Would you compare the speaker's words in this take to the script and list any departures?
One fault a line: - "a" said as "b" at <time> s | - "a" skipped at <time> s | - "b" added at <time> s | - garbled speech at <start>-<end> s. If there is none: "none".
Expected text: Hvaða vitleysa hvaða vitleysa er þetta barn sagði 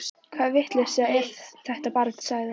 - "hvaða vitleysa" skipped at 1.1 s